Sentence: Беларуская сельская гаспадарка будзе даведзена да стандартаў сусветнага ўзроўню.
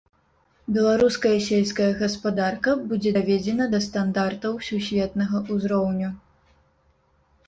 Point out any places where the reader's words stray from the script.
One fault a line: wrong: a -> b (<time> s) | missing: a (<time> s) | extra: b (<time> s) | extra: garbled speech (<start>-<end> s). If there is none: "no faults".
no faults